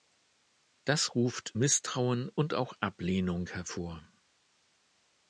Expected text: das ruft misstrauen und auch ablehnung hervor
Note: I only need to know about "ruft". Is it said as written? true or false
true